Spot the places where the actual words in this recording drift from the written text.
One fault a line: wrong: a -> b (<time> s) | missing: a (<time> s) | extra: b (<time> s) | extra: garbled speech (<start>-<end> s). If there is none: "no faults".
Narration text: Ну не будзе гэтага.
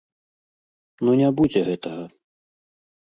no faults